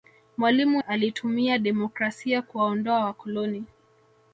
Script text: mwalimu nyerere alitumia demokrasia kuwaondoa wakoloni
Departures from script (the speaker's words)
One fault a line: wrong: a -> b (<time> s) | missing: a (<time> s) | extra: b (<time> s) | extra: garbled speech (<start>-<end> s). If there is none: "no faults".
missing: nyerere (0.8 s)